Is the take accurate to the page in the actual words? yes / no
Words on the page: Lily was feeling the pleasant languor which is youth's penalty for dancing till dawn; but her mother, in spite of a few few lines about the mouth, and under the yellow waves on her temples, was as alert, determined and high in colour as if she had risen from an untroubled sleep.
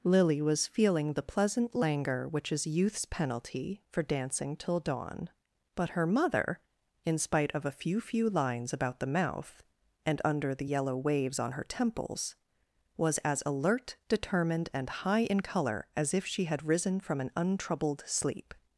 yes